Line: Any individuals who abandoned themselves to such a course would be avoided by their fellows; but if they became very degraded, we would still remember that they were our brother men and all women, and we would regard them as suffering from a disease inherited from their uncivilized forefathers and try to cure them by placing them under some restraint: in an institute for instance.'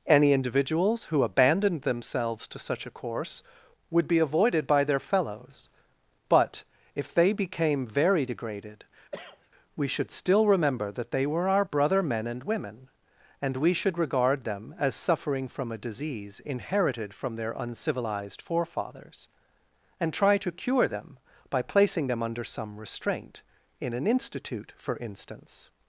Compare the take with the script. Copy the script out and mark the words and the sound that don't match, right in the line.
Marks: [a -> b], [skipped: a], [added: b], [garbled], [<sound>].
Any individuals who abandoned themselves to such a course would be avoided by their fellows; but if they became very degraded, [cough] we [would -> should] still remember that they were our brother men and [skipped: all] women, and we [would -> should] regard them as suffering from a disease inherited from their uncivilized forefathers and try to cure them by placing them under some restraint: in an institute for instance.'